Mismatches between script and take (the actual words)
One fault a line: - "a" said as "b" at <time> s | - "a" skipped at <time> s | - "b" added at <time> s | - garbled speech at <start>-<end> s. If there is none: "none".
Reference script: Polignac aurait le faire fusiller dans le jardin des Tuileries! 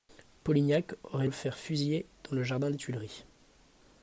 none